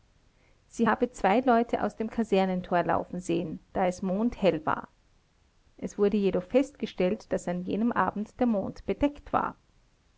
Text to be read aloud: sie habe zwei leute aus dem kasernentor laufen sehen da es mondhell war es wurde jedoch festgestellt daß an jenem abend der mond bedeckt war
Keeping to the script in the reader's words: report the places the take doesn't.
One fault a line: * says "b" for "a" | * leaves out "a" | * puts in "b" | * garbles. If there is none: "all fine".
all fine